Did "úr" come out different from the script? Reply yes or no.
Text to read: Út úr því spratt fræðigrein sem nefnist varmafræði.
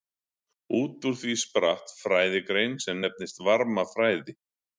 no